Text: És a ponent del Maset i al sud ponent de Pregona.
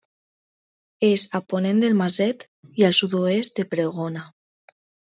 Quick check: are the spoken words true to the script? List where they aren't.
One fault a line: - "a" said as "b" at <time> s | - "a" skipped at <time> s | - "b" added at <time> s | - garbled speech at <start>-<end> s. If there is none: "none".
- "ponent" said as "oest" at 3.2 s